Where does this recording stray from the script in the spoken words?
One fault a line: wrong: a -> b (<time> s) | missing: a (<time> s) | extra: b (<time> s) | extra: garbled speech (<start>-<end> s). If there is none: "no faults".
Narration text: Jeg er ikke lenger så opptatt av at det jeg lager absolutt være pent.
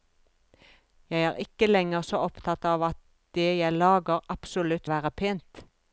no faults